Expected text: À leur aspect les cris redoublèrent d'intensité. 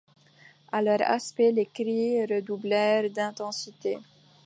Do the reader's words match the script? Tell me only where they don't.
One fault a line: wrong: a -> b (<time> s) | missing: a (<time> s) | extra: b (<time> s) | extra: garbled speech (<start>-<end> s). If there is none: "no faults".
no faults